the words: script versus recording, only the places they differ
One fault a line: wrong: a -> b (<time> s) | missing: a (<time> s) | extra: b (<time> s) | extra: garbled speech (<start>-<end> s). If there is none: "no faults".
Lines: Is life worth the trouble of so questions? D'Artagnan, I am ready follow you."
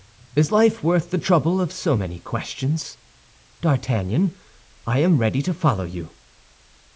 extra: many (1.9 s)
extra: to (5.4 s)